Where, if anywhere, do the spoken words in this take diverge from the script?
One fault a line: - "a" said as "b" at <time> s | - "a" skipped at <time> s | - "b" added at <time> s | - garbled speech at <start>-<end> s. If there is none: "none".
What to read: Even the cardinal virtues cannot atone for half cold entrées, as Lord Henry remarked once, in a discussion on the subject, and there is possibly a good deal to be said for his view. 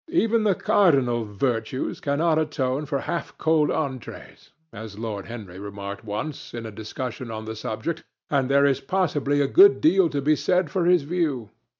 none